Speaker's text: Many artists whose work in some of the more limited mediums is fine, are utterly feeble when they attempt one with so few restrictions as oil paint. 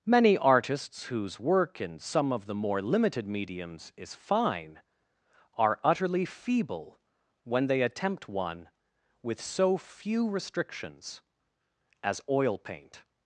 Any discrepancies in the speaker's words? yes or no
no